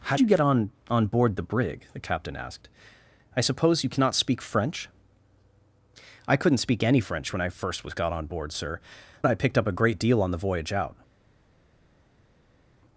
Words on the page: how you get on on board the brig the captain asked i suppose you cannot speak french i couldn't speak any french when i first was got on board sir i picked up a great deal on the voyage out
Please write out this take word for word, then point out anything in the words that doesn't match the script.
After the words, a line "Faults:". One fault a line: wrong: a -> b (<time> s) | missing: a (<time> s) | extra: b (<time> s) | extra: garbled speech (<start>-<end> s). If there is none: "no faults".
how you get on on board the brig the captain asked i suppose you cannot speak french i couldn't speak any french when i first was got on board sir i picked up a great deal on the voyage out
Faults:
no faults